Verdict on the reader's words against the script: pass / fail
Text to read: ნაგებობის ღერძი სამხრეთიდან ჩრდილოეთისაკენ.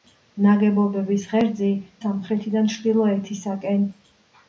pass